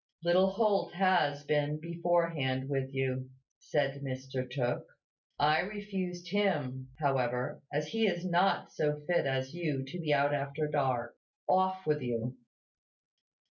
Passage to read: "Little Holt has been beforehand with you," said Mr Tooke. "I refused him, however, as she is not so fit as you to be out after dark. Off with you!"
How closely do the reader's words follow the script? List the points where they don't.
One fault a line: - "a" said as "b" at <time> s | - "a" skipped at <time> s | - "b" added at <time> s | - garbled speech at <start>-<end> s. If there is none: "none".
- "she" said as "he" at 7.9 s